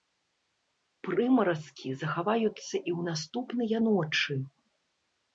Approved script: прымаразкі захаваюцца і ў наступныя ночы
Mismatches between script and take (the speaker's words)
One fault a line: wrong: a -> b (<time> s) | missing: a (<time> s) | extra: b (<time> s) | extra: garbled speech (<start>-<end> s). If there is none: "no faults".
no faults